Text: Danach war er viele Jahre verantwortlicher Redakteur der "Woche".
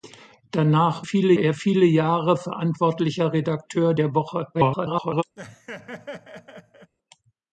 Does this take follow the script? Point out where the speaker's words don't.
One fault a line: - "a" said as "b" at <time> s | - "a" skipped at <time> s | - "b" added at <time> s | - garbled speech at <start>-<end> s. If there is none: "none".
- "war" said as "viele" at 1.0 s
- garbled speech at 4.5-5.2 s